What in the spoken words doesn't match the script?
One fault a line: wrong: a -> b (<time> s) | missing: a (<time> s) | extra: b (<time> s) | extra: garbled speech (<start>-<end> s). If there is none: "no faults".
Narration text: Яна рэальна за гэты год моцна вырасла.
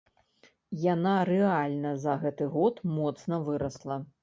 no faults